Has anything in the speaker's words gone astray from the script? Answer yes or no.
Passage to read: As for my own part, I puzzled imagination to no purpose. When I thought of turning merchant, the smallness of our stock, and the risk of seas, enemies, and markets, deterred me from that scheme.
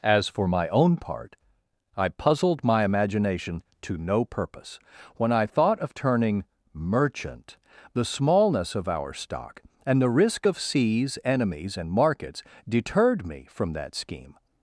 yes